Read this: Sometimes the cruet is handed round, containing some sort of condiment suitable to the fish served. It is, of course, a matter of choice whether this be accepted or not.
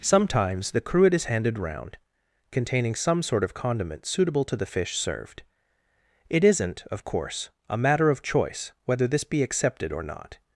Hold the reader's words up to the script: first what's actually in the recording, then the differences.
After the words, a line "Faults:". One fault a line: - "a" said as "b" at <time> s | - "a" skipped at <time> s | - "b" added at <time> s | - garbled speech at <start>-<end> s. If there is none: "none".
Sometimes the cruet is handed round, containing some sort of condiment suitable to the fish served. It isn't, of course, a matter of choice whether this be accepted or not.
Faults:
- "is" said as "isn't" at 6.4 s